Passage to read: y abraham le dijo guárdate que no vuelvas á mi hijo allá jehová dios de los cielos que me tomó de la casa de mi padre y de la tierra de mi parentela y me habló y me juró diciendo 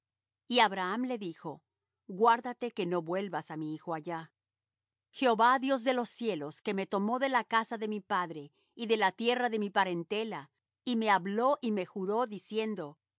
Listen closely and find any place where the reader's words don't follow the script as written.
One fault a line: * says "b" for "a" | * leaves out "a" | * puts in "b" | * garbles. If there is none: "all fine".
all fine